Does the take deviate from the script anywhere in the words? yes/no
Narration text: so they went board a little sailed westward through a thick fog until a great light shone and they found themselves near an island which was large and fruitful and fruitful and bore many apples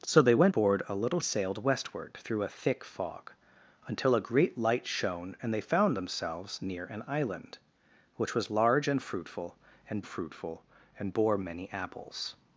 no